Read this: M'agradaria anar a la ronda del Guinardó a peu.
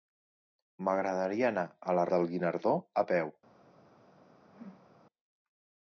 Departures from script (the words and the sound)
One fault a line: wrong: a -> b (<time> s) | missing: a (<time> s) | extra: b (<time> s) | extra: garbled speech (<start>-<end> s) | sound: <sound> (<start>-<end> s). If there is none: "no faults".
missing: ronda (2.1 s)
sound: whoosh (4.4-5.0 s)